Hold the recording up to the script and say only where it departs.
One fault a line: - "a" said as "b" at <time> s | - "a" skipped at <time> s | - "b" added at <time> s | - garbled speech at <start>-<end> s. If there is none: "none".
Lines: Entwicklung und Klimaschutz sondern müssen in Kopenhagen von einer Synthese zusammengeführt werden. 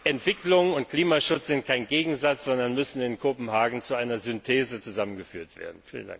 - "sind kein Gegensatz" added at 1.5 s
- "von" said as "zu" at 3.8 s